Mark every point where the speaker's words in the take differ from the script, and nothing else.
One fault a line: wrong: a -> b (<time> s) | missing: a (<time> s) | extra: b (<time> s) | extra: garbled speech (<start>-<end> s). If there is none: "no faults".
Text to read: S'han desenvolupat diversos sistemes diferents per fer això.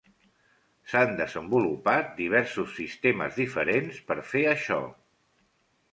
no faults